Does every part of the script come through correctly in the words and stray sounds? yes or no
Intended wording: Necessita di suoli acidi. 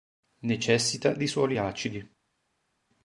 yes